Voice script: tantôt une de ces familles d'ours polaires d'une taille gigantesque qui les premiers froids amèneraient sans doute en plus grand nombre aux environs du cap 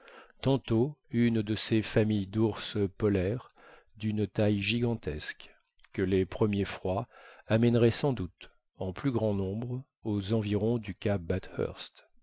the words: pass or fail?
fail